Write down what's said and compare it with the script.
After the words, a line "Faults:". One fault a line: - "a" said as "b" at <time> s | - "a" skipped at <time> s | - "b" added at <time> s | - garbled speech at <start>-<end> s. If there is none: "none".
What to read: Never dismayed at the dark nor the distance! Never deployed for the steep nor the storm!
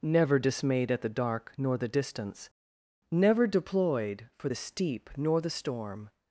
Never dismayed at the dark nor the distance! Never deployed for the steep nor the storm!
Faults:
none